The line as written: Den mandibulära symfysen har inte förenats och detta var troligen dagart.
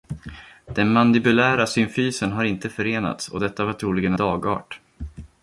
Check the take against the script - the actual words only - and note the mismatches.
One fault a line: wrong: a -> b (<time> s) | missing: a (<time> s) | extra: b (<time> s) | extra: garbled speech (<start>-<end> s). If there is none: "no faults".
no faults